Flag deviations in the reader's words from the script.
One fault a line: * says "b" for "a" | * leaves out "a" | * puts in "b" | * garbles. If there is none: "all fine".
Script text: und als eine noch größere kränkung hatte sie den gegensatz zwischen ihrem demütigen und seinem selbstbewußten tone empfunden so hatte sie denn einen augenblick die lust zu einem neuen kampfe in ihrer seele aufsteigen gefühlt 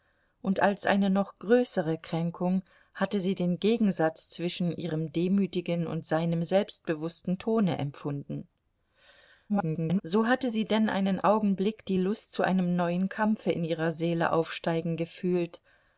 * garbles